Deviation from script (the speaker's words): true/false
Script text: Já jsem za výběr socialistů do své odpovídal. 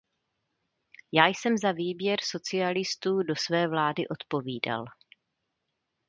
true